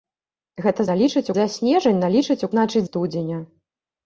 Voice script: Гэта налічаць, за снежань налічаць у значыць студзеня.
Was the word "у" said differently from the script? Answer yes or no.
no